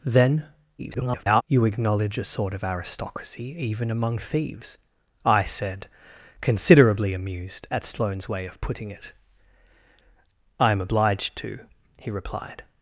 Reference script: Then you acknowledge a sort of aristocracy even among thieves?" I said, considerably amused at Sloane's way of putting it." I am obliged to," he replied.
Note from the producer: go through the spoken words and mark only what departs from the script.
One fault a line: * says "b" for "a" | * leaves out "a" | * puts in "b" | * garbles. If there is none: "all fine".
* garbles